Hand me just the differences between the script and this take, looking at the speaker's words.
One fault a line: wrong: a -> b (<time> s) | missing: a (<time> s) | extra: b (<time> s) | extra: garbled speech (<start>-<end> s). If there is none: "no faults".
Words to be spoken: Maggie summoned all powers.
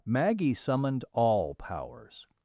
no faults